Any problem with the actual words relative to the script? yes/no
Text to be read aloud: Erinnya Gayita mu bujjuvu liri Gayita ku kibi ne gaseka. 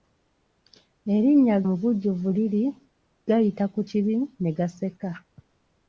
yes